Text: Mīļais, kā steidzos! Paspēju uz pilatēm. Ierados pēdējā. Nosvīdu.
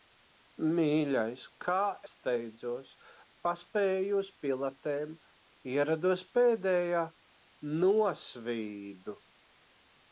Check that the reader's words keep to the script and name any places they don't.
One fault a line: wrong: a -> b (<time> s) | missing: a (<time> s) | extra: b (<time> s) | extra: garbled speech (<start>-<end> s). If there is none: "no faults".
no faults